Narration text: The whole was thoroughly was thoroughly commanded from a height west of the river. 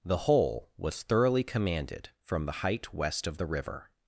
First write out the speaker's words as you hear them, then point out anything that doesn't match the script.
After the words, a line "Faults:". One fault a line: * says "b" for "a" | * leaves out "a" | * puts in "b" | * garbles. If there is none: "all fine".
The whole was thoroughly commanded from the height west of the river.
Faults:
* leaves out "was thoroughly"
* says "the" for "a"